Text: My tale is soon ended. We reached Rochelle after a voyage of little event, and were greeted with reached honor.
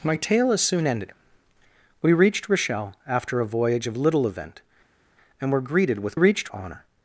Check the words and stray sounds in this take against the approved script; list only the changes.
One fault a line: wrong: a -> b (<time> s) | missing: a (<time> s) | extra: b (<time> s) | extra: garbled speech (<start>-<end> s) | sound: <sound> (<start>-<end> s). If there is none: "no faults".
no faults